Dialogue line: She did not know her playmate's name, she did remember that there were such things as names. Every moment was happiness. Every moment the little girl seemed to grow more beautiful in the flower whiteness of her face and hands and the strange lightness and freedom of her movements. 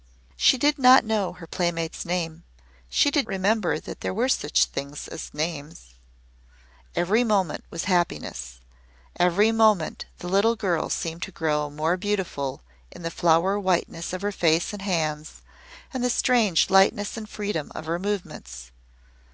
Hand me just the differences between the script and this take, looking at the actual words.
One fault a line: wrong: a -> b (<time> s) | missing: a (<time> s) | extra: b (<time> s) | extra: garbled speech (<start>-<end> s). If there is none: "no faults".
no faults